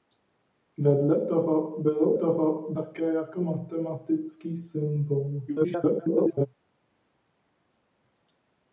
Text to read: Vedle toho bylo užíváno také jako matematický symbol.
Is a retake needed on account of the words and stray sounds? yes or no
yes